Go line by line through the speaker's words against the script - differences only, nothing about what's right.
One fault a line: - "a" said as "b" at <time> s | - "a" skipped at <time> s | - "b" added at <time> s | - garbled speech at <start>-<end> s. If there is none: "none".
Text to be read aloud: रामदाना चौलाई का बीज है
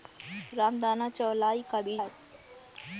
none